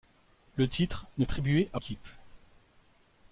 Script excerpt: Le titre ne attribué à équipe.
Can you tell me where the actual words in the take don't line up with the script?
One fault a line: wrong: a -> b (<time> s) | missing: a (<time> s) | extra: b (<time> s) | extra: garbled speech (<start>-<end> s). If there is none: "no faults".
no faults